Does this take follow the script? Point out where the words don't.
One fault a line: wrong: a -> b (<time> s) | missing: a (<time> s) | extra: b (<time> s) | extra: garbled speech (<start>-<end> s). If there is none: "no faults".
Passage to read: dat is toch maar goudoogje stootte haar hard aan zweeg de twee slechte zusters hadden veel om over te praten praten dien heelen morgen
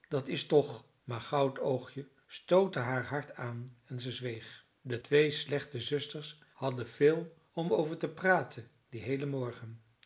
extra: en ze (3.9 s)
missing: praten (8.7 s)